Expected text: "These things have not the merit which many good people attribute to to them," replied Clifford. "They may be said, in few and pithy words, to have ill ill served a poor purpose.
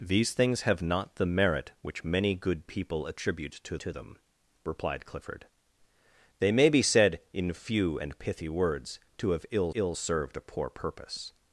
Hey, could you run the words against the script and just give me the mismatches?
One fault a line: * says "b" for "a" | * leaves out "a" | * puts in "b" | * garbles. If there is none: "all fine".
all fine